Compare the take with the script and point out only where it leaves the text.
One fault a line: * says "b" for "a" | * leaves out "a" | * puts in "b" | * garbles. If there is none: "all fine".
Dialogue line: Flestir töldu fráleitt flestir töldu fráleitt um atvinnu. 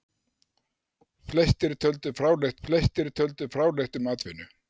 all fine